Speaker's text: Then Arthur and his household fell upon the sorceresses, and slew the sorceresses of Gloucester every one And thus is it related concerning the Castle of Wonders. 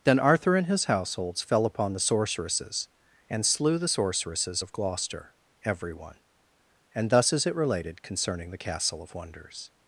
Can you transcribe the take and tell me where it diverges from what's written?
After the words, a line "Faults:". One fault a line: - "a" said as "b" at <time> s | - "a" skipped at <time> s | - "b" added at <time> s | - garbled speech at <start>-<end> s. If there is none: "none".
Then Arthur and his households fell upon the sorceresses, and slew the sorceresses of Gloucester every one And thus is it related concerning the Castle of Wonders.
Faults:
- "household" said as "households" at 0.8 s